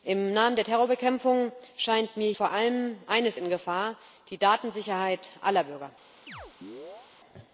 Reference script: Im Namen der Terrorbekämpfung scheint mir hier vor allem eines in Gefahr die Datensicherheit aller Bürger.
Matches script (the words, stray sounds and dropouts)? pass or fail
fail